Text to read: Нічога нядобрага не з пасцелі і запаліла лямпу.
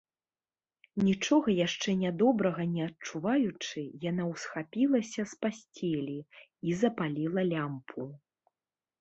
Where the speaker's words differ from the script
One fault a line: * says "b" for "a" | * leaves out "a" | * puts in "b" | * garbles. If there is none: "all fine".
* puts in "яшчэ"
* puts in "адчуваючы яна ўсхапілася"